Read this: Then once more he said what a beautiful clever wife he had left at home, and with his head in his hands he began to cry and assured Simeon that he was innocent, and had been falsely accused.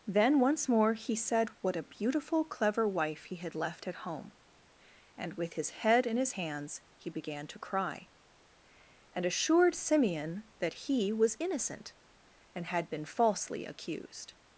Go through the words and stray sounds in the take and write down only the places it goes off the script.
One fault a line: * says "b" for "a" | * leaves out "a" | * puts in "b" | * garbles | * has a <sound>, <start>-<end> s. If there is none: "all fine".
all fine